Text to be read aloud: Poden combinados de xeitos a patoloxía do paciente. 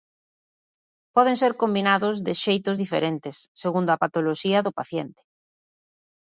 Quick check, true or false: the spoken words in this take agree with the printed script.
false